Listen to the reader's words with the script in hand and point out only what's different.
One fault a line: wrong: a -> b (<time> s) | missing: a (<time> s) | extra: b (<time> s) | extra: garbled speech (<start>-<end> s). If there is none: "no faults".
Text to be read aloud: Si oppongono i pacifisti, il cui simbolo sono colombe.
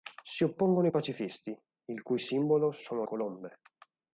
no faults